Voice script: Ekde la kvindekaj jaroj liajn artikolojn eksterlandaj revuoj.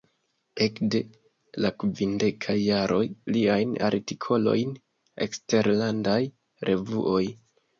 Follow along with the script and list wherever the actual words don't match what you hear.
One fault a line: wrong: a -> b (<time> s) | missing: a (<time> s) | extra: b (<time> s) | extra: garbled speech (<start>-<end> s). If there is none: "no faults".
no faults